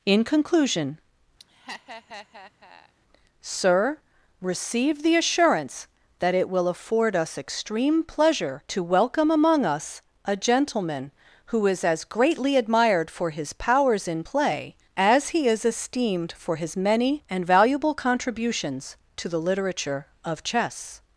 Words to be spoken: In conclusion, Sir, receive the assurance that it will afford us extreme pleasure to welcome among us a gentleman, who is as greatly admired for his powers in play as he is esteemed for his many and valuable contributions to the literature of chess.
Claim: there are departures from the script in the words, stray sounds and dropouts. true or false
true